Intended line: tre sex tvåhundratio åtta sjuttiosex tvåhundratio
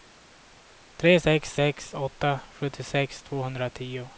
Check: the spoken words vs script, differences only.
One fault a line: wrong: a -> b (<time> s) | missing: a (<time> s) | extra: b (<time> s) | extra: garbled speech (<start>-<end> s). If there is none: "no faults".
wrong: tvåhundratio -> sex (1.5 s)